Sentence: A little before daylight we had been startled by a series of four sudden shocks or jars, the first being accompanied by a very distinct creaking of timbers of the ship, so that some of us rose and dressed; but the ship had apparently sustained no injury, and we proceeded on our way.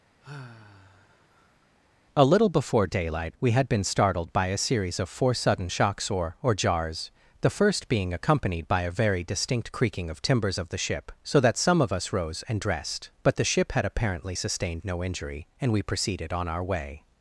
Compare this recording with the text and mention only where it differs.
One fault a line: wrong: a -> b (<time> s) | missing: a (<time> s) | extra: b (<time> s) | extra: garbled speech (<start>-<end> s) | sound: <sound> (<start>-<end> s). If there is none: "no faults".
sound: sigh (0.2-1.7 s)
extra: or (6.4 s)